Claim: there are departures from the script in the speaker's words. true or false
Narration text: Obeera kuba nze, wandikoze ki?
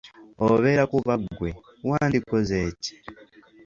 true